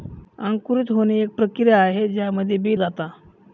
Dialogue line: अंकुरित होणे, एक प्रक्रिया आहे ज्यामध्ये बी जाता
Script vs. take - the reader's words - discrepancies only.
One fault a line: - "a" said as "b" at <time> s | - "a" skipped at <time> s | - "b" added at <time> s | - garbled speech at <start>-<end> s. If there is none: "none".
none